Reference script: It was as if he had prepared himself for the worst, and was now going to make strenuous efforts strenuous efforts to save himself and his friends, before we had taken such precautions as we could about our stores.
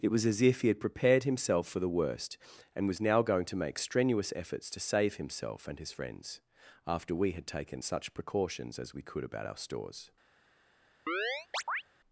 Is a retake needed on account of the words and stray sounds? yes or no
yes